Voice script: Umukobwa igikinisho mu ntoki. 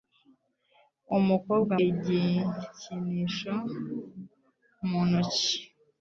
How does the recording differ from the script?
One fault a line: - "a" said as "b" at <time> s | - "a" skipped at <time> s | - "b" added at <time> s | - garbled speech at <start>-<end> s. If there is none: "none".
none